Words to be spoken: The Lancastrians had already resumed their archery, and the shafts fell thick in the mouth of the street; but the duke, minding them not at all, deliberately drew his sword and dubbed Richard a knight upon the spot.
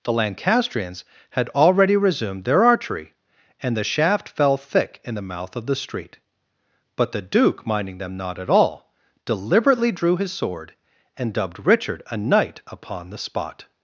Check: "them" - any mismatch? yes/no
no